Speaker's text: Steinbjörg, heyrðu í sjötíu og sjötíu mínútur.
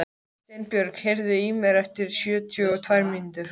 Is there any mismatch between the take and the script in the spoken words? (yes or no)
yes